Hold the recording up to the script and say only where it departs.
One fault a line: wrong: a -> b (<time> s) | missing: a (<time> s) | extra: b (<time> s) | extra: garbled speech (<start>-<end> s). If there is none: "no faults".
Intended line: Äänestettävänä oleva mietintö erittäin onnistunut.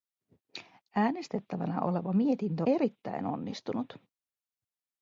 no faults